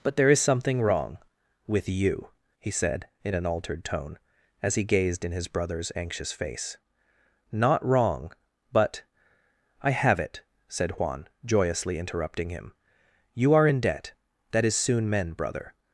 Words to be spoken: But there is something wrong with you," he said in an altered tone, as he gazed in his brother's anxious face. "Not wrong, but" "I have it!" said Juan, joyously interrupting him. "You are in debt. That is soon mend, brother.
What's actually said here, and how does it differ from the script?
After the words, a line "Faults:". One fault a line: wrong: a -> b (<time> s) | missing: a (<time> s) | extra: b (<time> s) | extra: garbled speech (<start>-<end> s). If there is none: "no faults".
But there is something wrong with you," he said in an altered tone, as he gazed in his brother's anxious face. "Not wrong, but" "I have it!" said Juan, joyously interrupting him. "You are in debt. That is soon mend, brother.
Faults:
no faults